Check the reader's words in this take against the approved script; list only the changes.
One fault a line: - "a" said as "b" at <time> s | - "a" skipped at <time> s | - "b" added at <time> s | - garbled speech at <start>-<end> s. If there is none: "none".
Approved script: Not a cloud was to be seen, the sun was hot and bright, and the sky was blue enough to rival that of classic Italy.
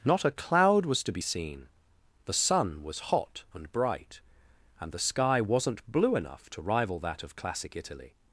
- "was" said as "wasn't" at 5.4 s